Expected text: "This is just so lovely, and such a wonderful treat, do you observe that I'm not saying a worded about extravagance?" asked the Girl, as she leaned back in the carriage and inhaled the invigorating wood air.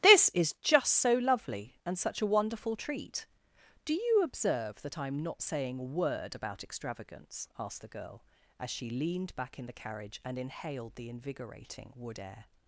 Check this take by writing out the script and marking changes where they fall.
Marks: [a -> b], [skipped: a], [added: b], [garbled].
"This is just so lovely, and such a wonderful treat, do you observe that I'm not saying a [worded -> word] about extravagance?" asked the Girl, as she leaned back in the carriage and inhaled the invigorating wood air.